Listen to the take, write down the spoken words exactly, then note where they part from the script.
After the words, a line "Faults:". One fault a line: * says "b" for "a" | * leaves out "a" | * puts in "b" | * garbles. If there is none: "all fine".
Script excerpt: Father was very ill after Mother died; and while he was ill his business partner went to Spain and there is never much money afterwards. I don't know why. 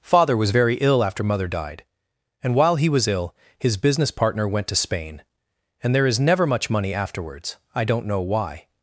Father was very ill after Mother died; and while he was ill his business partner went to Spain and there is never much money afterwards. I don't know why.
Faults:
all fine